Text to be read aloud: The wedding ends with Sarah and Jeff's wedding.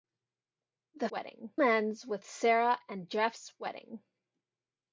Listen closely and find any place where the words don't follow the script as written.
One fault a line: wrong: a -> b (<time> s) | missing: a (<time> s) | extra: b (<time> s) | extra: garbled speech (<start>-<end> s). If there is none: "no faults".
no faults